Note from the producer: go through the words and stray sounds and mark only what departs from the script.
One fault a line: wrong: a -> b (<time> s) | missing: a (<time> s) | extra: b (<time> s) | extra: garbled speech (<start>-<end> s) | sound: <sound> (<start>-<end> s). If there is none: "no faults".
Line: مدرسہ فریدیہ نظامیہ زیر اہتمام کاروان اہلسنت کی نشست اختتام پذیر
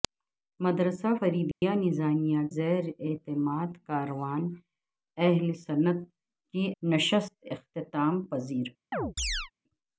sound: dropout (1.5-1.6 s)
sound: chirp (8.9-9.5 s)